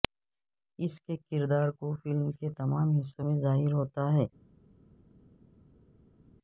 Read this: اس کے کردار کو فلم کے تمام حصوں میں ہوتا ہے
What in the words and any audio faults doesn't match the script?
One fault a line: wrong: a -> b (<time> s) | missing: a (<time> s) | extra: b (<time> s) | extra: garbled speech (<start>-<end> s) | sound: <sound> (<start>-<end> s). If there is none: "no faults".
extra: ظاہر (3.4 s)